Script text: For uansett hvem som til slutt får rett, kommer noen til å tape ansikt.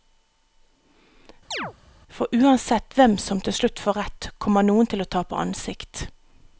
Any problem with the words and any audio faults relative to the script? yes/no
yes